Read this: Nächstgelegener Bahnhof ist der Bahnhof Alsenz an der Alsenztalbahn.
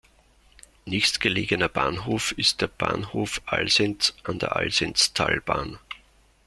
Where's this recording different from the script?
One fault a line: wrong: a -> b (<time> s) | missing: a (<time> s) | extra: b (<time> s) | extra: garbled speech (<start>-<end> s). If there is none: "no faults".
no faults